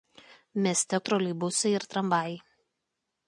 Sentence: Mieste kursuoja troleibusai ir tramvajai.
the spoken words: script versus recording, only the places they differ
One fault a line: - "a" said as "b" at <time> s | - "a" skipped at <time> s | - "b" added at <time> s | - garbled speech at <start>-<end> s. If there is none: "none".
- "kursuoja" skipped at 1.0 s